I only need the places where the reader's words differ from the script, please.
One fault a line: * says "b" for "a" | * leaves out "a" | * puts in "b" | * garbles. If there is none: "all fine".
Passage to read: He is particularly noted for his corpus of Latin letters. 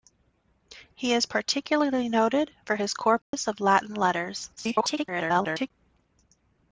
* garbles